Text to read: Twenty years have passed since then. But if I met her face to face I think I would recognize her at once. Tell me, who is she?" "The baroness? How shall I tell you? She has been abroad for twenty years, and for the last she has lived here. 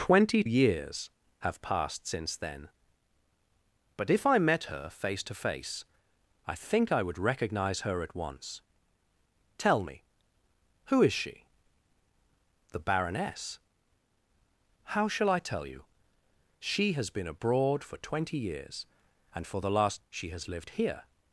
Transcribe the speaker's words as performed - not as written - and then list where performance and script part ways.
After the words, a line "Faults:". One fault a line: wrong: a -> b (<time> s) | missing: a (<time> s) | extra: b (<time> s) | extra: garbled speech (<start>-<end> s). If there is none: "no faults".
Twenty years have passed since then. But if I met her face to face I think I would recognize her at once. Tell me, who is she?" "The baroness? How shall I tell you? She has been abroad for twenty years, and for the last she has lived here.
Faults:
no faults